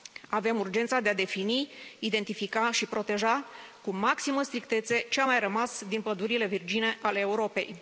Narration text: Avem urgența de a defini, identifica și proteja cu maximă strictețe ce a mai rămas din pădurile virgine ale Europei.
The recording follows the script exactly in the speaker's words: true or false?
true